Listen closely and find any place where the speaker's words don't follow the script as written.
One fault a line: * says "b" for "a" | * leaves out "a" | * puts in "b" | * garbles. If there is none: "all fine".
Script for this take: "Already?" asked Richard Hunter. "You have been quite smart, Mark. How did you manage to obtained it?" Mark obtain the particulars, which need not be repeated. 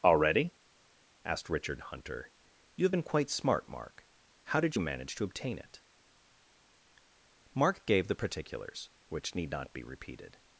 * says "obtain" for "obtained"
* says "gave" for "obtain"